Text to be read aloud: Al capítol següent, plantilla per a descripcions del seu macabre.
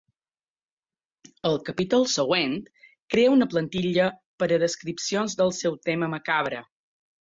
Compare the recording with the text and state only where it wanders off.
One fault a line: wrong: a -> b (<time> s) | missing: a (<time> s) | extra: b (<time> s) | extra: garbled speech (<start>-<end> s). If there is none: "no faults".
extra: crea una (3.1 s)
extra: tema (5.9 s)